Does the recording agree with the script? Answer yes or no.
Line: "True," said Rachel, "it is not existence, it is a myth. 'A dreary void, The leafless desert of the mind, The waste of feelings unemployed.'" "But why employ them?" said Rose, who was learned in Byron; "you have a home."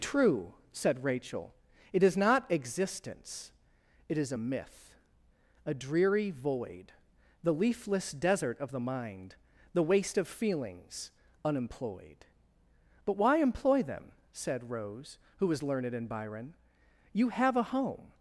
yes